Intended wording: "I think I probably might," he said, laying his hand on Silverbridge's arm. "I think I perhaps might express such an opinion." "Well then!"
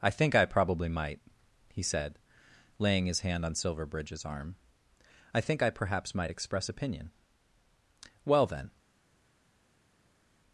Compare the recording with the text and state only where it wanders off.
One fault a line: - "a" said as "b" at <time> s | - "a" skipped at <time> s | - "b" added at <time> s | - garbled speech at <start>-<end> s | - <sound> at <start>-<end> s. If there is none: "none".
- "such an" skipped at 6.7 s